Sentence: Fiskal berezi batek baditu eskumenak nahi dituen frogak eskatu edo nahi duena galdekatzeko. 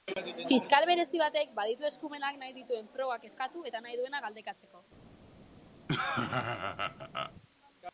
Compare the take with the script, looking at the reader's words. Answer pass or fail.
fail